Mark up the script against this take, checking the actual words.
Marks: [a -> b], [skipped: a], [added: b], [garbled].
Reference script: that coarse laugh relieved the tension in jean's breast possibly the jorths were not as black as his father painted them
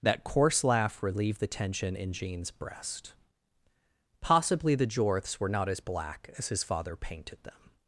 that coarse laugh relieved the tension in jean's breast possibly the jorths were not as black as his father painted them